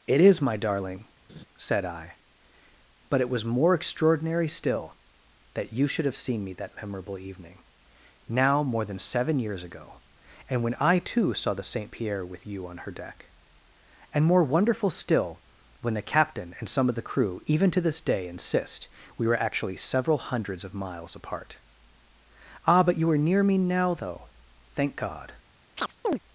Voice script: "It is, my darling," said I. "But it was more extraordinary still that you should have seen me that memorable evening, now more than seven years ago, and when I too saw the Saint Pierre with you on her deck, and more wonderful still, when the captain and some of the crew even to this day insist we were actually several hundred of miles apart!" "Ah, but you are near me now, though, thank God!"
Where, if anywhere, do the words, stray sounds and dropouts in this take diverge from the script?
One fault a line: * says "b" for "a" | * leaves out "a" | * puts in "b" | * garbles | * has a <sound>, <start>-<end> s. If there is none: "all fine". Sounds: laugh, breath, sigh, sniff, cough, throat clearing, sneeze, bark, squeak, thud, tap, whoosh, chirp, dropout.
* has a laugh, 1.3-1.5 s
* says "hundreds" for "hundred"
* has a chirp, 25.8-26.2 s